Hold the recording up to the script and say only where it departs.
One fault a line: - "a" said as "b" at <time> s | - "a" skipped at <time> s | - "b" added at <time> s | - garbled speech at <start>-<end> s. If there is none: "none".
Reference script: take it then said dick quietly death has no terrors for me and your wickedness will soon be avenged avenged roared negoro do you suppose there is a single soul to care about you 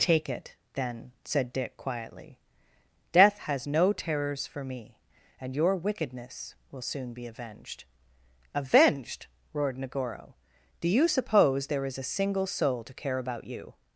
none